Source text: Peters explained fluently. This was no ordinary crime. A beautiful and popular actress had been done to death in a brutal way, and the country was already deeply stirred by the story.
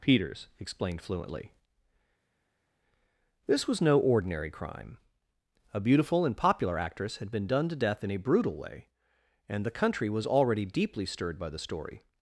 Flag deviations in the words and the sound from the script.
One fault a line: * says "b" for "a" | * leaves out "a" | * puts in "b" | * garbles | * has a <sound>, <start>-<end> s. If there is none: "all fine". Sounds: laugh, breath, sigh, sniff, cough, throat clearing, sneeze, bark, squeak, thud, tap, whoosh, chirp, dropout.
all fine